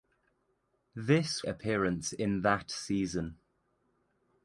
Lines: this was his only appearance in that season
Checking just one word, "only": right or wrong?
wrong